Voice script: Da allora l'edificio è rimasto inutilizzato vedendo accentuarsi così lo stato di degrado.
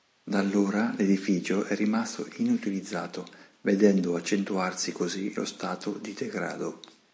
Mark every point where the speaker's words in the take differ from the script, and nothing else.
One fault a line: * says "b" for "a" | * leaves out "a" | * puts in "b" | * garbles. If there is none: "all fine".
all fine